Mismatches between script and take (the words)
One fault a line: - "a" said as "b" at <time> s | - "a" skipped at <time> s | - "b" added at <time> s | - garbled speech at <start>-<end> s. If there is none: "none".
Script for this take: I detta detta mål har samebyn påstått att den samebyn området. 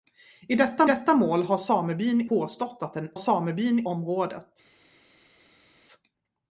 none